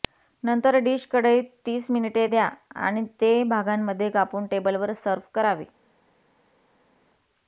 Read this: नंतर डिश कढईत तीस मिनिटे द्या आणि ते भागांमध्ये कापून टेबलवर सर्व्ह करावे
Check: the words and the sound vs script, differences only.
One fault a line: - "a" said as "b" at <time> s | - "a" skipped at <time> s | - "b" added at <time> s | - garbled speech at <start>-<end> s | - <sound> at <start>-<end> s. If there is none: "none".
none